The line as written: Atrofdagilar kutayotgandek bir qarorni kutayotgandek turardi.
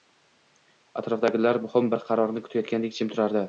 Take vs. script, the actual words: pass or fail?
fail